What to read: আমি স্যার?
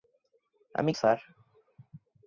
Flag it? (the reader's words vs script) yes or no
no